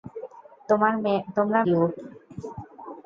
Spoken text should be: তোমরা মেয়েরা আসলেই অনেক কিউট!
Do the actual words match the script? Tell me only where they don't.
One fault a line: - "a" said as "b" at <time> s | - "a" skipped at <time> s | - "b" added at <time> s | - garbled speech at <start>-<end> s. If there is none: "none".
- "মেয়েরা আসলেই অনেক" skipped at 1.6 s